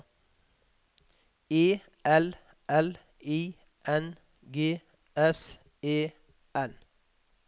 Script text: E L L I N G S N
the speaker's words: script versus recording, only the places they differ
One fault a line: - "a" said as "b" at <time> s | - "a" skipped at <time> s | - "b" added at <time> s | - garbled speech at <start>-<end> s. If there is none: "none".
- "E" added at 5.8 s